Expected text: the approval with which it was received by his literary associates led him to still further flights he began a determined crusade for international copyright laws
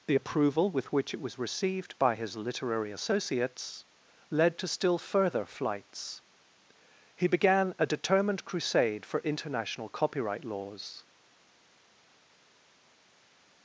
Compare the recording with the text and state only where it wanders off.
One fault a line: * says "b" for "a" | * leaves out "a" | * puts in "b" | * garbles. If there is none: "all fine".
* leaves out "him"